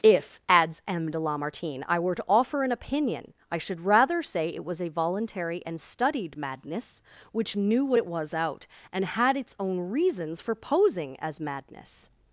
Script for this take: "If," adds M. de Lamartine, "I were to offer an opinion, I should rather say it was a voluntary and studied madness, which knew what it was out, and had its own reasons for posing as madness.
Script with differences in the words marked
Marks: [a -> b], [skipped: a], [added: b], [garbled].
"If," adds M. de Lamartine, "I were to offer an opinion, I should rather say it was a voluntary and studied madness, which knew what it was out, and had its own reasons for posing as madness.